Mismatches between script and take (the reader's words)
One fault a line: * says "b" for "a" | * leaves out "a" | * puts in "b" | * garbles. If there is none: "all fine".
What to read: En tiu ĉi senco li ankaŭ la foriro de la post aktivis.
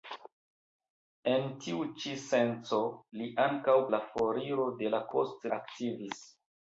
all fine